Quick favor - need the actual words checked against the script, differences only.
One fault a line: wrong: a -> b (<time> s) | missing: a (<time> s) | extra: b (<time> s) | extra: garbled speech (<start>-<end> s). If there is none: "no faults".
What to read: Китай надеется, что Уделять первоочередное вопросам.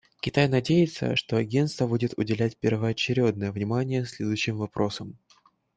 extra: Агентство будет (1.4 s)
extra: внимание следующим (3.5 s)